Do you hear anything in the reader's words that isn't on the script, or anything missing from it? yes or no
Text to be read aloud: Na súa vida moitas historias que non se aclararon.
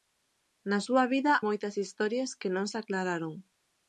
no